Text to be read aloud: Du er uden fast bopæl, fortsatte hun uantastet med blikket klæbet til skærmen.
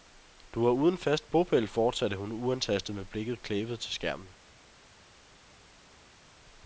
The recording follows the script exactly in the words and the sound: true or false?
true